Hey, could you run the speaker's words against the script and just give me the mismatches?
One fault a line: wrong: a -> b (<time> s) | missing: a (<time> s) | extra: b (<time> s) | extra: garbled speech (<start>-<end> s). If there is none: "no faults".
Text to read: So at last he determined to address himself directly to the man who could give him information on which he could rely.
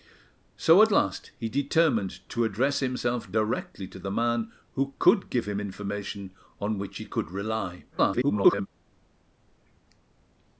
extra: garbled speech (7.9-8.7 s)